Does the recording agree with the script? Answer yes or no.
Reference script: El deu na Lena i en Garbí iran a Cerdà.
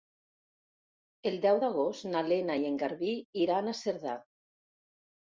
no